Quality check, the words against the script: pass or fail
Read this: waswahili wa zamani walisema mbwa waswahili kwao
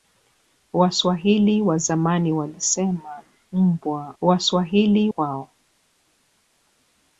pass